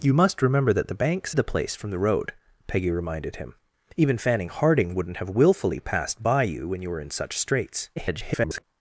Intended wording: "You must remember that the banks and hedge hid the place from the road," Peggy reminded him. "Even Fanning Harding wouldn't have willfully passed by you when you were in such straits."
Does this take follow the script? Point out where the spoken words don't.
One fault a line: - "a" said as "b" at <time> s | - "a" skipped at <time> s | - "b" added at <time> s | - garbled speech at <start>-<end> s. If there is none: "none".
- "and hedge hid" skipped at 1.4 s
- garbled speech at 8.0-8.6 s